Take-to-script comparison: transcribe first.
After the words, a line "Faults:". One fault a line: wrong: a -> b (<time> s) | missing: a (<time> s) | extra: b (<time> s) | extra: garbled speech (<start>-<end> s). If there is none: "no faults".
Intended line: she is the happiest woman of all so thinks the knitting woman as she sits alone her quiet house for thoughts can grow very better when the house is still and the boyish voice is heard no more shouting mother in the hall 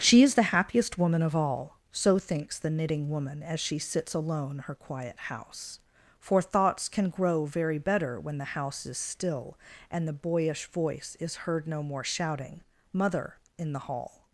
she is the happiest woman of all so thinks the knitting woman as she sits alone her quiet house for thoughts can grow very better when the house is still and the boyish voice is heard no more shouting mother in the hall
Faults:
no faults